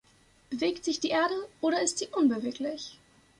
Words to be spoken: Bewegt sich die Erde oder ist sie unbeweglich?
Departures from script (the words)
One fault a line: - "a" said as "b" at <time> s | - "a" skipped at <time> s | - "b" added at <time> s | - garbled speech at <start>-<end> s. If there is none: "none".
none